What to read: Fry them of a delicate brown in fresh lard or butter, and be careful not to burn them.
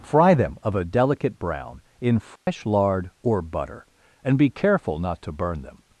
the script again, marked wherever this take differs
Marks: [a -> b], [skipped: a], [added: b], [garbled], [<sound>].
Fry them of a delicate brown in fresh [dropout] lard or butter, and be careful not to burn them.